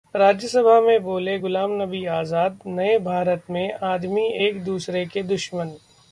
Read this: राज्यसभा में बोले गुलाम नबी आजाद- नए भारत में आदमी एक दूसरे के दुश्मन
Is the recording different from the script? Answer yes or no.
no